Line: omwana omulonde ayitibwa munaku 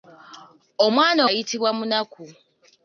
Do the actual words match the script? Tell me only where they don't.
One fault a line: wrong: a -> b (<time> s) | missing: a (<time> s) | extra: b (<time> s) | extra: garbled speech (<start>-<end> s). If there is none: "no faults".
missing: omulonde (1.2 s)